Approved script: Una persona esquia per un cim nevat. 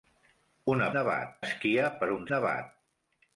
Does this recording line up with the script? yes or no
no